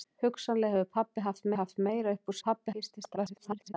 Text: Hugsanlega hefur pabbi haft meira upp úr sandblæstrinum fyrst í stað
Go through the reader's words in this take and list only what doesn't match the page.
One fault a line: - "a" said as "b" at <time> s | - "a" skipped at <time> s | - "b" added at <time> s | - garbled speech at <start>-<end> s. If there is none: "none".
- "haft" added at 1.6 s
- "sandblæstrinum" said as "pabbi" at 2.5 s
- garbled speech at 3.2-3.7 s